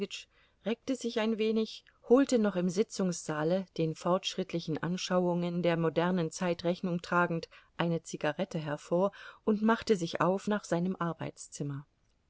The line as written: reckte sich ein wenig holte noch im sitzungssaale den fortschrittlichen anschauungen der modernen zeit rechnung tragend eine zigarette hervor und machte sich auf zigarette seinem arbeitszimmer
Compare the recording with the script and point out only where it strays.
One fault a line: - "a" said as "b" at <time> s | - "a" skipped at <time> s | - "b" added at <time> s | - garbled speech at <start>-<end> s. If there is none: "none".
- "zigarette" said as "nach" at 10.4 s